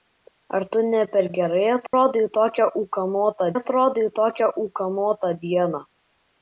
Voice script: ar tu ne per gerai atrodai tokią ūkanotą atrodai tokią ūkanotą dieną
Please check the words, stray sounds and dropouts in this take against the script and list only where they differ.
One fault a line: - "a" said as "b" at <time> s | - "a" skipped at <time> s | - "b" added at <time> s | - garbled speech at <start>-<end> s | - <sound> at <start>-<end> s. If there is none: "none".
- dropout at 1.9-1.9 s